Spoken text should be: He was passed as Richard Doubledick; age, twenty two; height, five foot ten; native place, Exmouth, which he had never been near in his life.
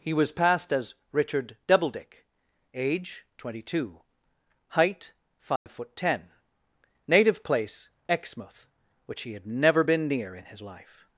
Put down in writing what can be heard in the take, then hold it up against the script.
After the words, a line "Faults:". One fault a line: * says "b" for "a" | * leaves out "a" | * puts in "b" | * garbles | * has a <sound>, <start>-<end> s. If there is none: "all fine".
He was passed as Richard Doubledick; age, twenty two; height, five foot ten; native place, Exmouth, which he had never been near in his life.
Faults:
* has a dropout, 5.6-5.7 s